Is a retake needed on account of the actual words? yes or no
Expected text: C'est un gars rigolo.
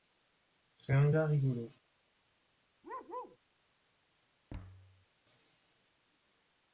no